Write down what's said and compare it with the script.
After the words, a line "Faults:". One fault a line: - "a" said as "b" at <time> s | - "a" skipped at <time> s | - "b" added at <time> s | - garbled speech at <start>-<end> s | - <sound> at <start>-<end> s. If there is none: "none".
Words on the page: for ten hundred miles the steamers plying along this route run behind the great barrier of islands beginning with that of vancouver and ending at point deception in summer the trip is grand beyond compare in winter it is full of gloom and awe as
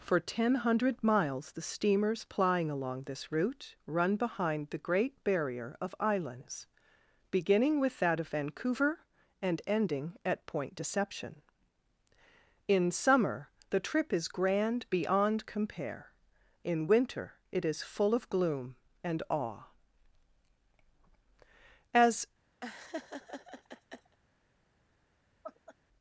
for ten hundred miles the steamers plying along this route run behind the great barrier of islands beginning with that of vancouver and ending at point deception in summer the trip is grand beyond compare in winter it is full of gloom and awe as
Faults:
- laugh at 22.6-24.2 s
- laugh at 25.4-25.8 s